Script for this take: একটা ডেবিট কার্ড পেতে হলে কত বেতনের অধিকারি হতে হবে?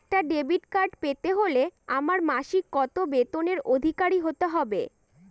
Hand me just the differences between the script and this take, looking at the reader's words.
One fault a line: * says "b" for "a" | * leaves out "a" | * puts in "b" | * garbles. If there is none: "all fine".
* puts in "আমার মাসিক"